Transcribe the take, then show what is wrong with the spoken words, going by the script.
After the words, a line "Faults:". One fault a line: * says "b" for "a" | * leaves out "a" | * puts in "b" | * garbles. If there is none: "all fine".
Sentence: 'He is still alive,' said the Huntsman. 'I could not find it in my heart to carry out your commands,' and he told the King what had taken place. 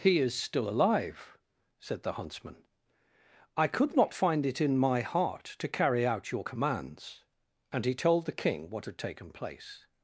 'He is still alive,' said the Huntsman. 'I could not find it in my heart to carry out your commands,' and he told the King what had taken place.
Faults:
all fine